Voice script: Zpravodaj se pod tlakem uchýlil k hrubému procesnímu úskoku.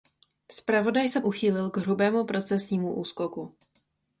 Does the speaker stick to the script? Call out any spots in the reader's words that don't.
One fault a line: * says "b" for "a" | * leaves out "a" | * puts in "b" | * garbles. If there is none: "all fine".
* leaves out "pod tlakem"